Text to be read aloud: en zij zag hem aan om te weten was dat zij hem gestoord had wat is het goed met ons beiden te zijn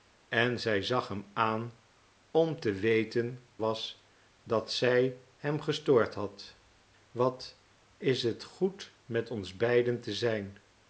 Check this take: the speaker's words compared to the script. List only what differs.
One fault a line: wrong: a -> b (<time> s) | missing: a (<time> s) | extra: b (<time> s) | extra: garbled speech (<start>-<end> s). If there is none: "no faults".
no faults